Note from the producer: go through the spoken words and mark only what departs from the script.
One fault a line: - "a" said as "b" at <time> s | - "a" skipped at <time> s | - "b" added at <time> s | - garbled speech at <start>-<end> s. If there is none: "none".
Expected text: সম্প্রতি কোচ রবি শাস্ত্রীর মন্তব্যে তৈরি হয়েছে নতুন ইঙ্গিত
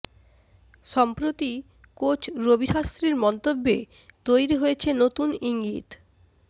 none